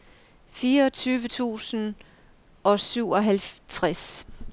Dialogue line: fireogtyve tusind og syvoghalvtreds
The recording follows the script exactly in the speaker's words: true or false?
true